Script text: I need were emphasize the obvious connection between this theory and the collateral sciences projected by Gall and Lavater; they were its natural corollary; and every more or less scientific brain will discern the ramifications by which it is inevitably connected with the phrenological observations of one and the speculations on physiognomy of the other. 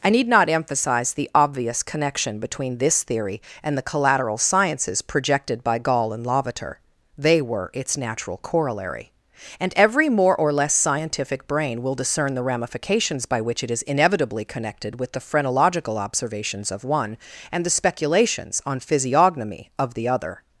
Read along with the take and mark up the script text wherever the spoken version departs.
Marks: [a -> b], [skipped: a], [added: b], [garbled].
I need [were -> not] emphasize the obvious connection between this theory and the collateral sciences projected by Gall and Lavater; they were its natural corollary; and every more or less scientific brain will discern the ramifications by which it is inevitably connected with the phrenological observations of one and the speculations on physiognomy of the other.